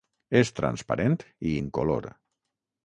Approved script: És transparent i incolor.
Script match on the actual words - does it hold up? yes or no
yes